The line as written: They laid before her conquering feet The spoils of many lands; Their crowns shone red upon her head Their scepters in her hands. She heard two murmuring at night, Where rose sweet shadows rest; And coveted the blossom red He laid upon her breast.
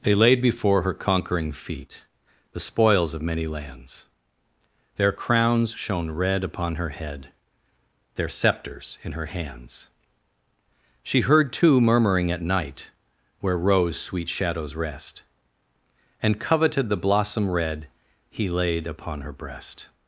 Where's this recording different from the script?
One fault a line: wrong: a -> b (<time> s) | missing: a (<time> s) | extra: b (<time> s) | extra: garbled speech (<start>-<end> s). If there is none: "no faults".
no faults